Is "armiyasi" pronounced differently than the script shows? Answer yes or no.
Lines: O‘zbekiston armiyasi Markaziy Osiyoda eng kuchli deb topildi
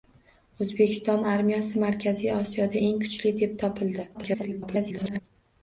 no